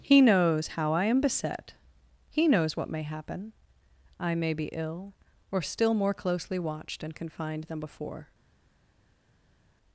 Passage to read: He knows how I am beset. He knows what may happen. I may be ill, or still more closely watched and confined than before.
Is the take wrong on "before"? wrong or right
right